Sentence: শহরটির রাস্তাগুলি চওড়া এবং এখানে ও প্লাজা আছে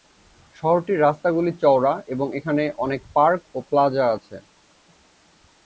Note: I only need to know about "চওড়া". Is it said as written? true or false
true